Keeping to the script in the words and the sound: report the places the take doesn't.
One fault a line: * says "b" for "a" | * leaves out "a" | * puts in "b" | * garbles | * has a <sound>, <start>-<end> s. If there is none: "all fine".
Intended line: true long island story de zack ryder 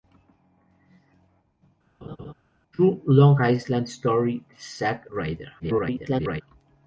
* has a laugh, 2.0-2.3 s
* garbles